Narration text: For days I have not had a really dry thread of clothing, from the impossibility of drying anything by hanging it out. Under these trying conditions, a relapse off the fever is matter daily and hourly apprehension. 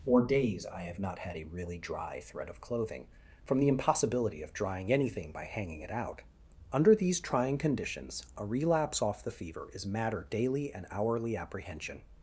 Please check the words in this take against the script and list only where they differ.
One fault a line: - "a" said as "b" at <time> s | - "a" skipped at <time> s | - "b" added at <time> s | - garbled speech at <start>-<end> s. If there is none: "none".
none